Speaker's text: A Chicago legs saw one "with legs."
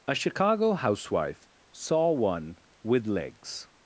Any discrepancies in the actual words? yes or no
yes